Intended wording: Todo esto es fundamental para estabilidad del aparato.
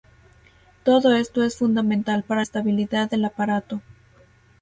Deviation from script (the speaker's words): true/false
false